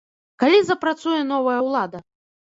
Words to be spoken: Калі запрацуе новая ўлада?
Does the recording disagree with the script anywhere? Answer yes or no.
no